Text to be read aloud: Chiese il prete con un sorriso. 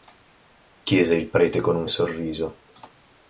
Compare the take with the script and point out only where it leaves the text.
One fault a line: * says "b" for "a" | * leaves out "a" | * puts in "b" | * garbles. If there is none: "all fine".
all fine